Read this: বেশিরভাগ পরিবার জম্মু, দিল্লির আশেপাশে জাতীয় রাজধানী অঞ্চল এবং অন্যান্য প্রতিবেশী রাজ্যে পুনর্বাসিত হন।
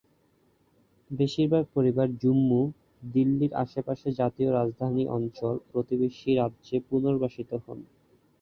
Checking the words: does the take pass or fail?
fail